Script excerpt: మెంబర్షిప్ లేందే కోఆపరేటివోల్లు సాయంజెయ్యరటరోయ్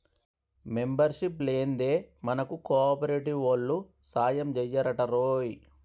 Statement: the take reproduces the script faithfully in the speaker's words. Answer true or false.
false